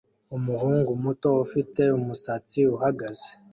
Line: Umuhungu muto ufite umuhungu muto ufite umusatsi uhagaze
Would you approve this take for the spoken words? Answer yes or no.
no